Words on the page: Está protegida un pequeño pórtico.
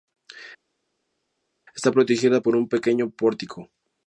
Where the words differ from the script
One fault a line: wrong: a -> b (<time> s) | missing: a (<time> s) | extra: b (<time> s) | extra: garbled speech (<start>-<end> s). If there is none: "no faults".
extra: por (2.4 s)